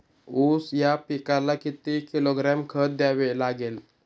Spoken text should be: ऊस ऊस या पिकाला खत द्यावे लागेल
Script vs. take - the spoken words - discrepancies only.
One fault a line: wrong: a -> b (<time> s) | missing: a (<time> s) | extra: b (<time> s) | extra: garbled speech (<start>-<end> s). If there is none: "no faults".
missing: ऊस (0.7 s)
extra: किती किलोग्रॅम (1.5 s)